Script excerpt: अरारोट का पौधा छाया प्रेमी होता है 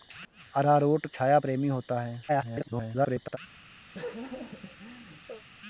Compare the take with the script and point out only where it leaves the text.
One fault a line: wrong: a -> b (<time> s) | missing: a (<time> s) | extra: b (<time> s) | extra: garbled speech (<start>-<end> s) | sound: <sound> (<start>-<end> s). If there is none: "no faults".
missing: का पौधा (1.1 s)
extra: garbled speech (2.3-3.4 s)
sound: laugh (3.9-5.4 s)